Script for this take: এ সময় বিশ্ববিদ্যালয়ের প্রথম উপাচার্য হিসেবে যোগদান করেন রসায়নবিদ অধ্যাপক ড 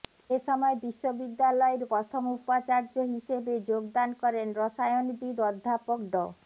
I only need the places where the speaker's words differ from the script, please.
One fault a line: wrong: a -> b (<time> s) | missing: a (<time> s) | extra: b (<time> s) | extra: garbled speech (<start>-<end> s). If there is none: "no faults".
no faults